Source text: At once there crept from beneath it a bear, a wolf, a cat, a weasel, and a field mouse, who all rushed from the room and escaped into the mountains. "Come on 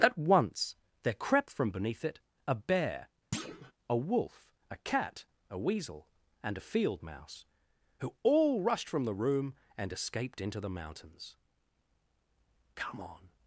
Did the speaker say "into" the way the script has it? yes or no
yes